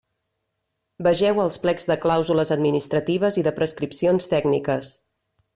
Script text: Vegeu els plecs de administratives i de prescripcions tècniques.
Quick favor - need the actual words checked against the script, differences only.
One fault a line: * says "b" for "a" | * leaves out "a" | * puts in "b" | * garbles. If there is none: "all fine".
* puts in "clàusules"